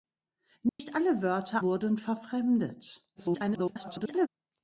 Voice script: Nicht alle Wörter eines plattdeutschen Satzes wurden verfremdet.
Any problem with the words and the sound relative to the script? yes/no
yes